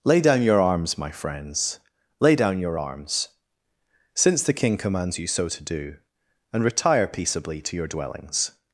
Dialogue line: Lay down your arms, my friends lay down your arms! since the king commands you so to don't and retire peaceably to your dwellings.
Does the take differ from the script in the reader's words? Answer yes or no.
yes